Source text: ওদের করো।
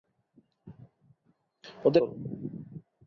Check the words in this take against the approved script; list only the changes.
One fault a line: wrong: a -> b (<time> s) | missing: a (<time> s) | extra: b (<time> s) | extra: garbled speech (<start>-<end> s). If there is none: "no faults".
no faults